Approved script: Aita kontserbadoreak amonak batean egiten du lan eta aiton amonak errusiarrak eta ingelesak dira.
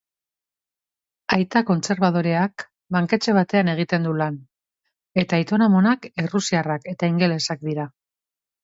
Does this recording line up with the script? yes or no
no